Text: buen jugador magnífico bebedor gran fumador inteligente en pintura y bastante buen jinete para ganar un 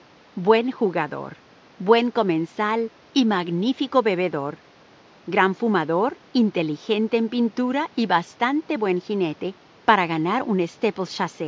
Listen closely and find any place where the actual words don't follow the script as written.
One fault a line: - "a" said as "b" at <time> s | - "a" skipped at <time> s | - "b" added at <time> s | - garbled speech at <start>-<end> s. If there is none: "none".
- "buen comensal y" added at 1.8 s